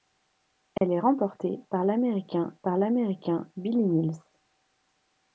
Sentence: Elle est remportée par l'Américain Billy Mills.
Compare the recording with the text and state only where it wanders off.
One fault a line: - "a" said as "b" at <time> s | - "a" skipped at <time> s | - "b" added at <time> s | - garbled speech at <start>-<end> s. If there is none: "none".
- "par l'Américain" added at 2.6 s